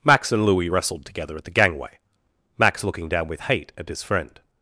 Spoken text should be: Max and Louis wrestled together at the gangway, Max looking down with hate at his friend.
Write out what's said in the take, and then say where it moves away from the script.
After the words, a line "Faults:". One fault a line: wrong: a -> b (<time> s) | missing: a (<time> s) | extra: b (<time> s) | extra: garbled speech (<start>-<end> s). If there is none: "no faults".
Max and Louis wrestled together at the gangway, Max looking down with hate at his friend.
Faults:
no faults